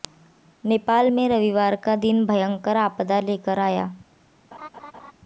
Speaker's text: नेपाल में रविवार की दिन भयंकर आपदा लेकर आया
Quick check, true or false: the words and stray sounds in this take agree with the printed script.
false